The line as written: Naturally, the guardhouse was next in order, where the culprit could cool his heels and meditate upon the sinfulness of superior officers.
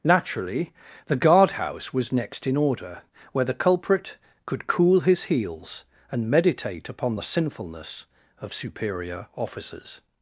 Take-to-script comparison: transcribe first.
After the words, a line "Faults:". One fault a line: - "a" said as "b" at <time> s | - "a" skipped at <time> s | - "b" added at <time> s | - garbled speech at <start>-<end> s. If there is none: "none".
Naturally, the guardhouse was next in order, where the culprit could cool his heels and meditate upon the sinfulness of superior officers.
Faults:
none